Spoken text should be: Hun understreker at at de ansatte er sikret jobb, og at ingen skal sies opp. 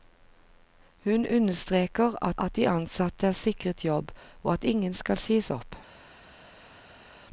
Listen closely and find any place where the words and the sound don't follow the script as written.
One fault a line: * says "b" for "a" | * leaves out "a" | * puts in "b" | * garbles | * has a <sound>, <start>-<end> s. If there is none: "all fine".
all fine